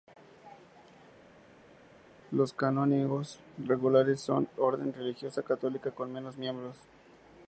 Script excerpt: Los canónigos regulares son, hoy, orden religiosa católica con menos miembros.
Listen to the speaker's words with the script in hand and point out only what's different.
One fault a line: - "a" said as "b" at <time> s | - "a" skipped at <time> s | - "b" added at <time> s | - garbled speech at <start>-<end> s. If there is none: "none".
- "hoy" skipped at 4.5 s